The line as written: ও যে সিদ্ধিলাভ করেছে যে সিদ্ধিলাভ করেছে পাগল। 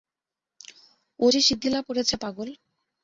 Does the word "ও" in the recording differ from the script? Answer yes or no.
no